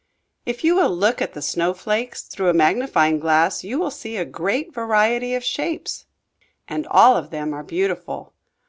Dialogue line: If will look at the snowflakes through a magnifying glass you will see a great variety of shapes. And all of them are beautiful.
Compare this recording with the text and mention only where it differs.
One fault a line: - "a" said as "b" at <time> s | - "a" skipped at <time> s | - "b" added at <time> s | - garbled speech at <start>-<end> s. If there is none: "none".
- "you" added at 0.6 s